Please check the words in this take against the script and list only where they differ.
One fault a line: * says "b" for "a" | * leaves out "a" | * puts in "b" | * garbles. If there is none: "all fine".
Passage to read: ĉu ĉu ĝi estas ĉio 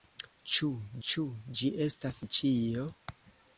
all fine